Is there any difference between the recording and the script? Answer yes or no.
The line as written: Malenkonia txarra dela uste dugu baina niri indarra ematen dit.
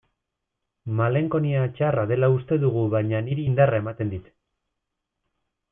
no